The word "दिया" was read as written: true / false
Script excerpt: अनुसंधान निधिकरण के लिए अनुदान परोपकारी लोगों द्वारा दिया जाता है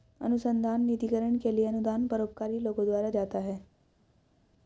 false